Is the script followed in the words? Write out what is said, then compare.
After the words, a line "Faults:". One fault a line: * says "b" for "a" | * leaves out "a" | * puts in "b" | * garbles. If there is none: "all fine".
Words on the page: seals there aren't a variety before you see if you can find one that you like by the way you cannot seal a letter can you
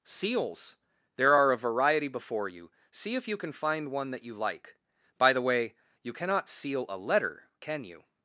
seals there are a variety before you see if you can find one that you like by the way you cannot seal a letter can you
Faults:
* says "are" for "aren't"